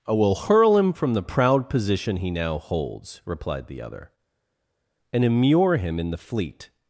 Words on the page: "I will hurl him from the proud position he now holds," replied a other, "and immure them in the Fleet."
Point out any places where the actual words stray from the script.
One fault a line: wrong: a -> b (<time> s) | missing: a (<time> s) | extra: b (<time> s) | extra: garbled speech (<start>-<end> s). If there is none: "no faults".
wrong: a -> the (3.7 s)
wrong: them -> him (5.8 s)